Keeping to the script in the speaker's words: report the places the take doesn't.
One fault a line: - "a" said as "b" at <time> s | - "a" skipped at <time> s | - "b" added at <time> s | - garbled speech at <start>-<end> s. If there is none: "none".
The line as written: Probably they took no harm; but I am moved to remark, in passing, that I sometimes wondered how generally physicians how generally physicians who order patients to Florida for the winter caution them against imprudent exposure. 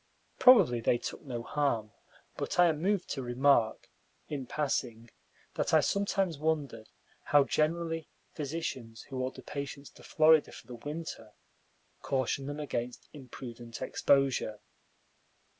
- "how generally physicians" skipped at 9.0 s